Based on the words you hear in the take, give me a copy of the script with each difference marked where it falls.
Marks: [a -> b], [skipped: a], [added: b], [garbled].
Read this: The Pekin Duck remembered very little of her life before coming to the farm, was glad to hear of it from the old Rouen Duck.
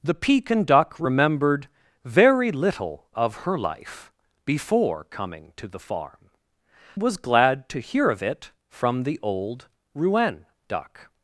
The Pekin Duck remembered very little of her life before coming to the farm, was glad to hear of it from the old Rouen Duck.